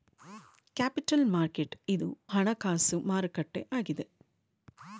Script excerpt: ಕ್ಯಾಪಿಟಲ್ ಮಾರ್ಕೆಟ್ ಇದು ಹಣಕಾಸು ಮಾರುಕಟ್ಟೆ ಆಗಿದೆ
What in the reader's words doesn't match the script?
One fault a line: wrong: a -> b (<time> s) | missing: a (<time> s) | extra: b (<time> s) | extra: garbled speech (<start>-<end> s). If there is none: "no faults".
no faults